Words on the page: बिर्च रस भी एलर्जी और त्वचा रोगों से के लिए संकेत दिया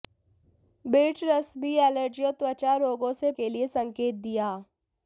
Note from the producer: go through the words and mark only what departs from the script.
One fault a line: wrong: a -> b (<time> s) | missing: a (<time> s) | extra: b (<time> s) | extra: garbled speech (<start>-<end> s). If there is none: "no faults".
no faults